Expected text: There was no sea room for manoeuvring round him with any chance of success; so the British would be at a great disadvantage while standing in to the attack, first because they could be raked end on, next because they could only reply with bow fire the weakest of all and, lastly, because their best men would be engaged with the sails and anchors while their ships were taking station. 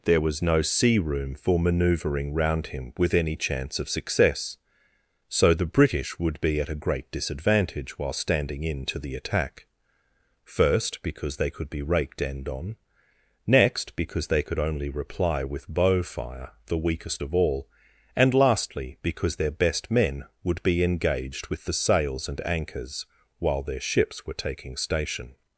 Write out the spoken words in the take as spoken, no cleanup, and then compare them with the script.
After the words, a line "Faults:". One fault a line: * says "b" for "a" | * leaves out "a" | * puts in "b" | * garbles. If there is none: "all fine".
There was no sea room for manoeuvring round him with any chance of success; so the British would be at a great disadvantage while standing in to the attack, first because they could be raked end on, next because they could only reply with bow fire the weakest of all and, lastly, because their best men would be engaged with the sails and anchors while their ships were taking station.
Faults:
all fine